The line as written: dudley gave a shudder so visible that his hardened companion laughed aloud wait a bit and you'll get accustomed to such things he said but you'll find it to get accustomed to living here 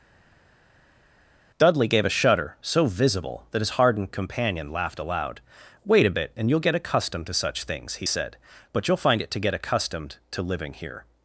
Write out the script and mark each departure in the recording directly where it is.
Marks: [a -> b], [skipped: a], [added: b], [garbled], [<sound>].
dudley gave a shudder so visible that his hardened companion laughed aloud wait a bit and you'll get accustomed to such things he said but you'll find it to get accustomed to living here